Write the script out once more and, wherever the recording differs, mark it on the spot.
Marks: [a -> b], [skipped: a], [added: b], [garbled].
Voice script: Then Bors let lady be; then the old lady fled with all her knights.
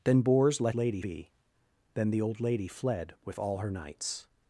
Then Bors let lady be; then the old lady fled with all her knights.